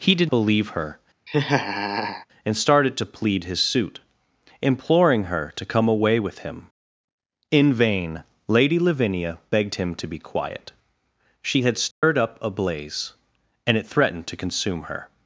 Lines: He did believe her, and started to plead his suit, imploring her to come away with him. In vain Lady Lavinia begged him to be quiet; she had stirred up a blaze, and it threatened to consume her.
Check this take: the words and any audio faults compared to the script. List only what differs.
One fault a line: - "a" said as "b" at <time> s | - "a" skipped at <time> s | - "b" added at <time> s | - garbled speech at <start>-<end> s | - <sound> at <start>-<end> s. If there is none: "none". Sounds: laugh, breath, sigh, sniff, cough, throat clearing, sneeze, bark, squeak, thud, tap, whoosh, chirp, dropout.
- laugh at 1.3-2.3 s
- dropout at 11.9-12.0 s